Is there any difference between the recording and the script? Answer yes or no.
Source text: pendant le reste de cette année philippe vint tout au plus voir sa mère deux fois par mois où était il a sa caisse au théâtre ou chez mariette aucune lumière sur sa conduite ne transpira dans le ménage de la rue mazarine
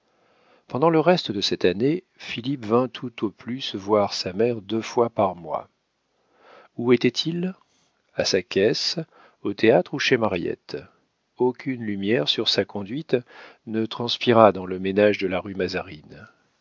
no